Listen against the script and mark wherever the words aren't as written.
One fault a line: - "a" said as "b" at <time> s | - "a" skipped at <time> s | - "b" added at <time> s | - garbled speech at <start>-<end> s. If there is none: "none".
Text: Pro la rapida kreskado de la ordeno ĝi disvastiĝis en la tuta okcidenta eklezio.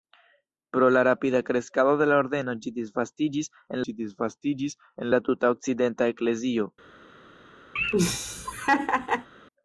- "ĝi disvastiĝis en" added at 3.9 s